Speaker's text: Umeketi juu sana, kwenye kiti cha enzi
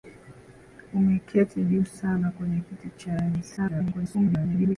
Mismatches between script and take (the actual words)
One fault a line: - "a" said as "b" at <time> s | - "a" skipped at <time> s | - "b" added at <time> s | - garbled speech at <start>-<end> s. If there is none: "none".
- garbled speech at 3.6-4.8 s